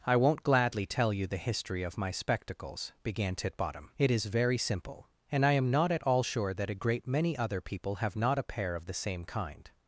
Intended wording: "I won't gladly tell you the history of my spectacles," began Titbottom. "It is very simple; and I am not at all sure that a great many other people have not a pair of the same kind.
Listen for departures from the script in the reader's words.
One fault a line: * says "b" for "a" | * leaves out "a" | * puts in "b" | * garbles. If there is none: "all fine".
all fine